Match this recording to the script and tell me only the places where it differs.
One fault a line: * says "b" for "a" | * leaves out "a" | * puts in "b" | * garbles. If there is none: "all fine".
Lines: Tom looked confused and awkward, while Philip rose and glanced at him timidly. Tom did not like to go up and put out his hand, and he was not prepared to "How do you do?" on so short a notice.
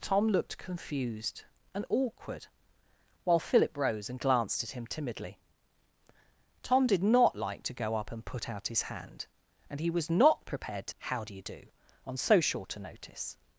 all fine